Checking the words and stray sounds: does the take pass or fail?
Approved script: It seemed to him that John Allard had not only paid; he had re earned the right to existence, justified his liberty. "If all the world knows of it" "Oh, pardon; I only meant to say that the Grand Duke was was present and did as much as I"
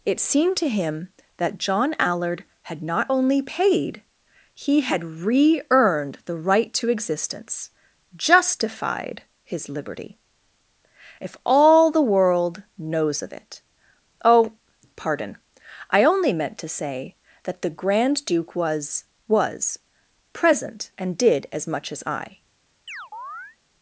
fail